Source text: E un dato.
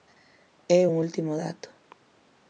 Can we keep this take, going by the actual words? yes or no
no